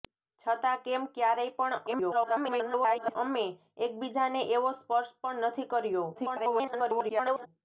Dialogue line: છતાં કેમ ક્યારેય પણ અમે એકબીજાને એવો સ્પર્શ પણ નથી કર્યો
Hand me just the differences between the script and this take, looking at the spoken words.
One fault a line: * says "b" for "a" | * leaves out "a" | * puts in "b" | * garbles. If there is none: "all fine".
* garbles
* garbles